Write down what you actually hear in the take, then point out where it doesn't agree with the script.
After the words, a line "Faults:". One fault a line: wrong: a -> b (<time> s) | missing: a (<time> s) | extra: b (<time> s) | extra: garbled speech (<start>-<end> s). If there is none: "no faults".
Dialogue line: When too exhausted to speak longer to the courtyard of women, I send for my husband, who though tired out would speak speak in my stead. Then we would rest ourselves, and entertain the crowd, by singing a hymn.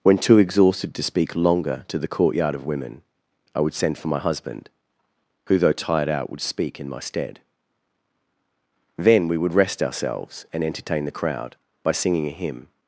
When too exhausted to speak longer to the courtyard of women, I would send for my husband, who though tired out would speak in my stead. Then we would rest ourselves, and entertain the crowd, by singing a hymn.
Faults:
extra: would (3.6 s)
missing: speak (6.8 s)